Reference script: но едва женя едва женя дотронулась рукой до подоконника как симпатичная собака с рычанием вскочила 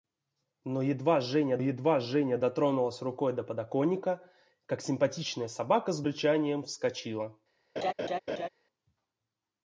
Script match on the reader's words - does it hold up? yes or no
yes